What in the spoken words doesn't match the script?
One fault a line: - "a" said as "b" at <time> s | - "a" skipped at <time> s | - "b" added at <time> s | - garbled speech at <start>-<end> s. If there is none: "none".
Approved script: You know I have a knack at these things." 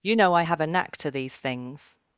- "at" said as "to" at 1.0 s